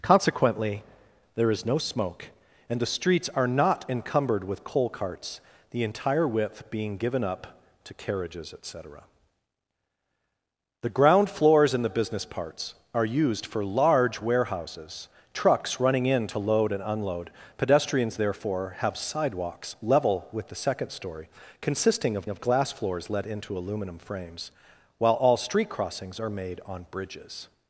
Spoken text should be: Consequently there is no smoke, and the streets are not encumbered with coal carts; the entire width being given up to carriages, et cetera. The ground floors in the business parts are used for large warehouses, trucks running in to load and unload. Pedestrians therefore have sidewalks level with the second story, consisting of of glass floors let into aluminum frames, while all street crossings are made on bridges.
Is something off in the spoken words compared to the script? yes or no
no